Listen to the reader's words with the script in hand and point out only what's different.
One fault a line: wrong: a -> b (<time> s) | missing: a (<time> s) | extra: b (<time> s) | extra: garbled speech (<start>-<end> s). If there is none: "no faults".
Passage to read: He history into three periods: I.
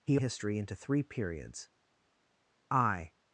no faults